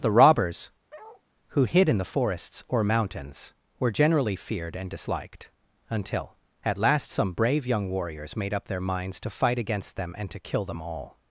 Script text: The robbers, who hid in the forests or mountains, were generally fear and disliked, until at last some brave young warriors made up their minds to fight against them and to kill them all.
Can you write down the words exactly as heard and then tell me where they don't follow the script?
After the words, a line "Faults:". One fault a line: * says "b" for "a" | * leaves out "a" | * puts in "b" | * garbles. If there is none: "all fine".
The robbers, who hid in the forests or mountains, were generally feared and disliked, until at last some brave young warriors made up their minds to fight against them and to kill them all.
Faults:
* says "feared" for "fear"